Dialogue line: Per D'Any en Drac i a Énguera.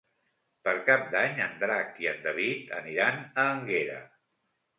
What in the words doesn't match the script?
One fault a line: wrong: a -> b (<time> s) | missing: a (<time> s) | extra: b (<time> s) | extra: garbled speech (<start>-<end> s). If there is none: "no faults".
extra: Cap (0.9 s)
extra: en David aniran (2.1 s)